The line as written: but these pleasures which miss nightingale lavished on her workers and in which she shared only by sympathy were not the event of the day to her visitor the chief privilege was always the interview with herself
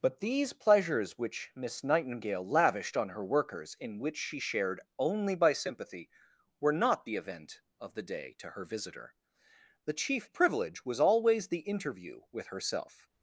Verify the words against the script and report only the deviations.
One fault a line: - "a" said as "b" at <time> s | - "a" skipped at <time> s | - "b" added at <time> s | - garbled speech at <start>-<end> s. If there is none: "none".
- "and" skipped at 3.8 s